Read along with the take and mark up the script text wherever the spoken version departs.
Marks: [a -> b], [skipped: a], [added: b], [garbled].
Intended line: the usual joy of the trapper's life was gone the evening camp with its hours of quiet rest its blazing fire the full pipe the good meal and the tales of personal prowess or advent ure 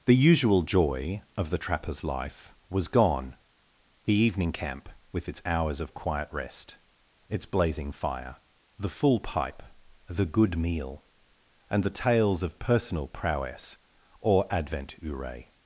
the usual joy of the trapper's life was gone the evening camp with its hours of quiet rest its blazing fire the full pipe the good meal and the tales of personal prowess or advent ure